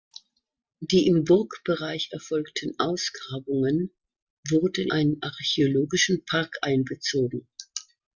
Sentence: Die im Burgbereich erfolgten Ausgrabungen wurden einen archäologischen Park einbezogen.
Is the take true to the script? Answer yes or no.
yes